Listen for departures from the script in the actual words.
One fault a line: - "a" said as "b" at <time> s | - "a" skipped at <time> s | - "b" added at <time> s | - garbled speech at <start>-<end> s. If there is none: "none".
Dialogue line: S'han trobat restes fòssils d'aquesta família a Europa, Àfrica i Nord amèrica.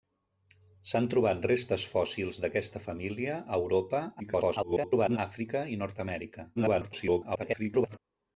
- garbled speech at 4.2-5.2 s
- garbled speech at 6.6-8.0 s